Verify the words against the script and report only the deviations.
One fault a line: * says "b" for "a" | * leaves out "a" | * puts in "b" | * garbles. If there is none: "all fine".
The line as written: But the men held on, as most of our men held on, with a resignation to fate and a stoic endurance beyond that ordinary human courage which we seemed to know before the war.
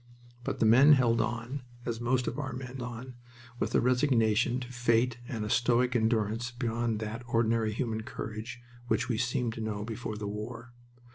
* leaves out "held"